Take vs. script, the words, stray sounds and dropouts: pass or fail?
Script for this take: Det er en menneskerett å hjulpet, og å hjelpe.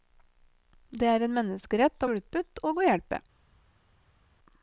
pass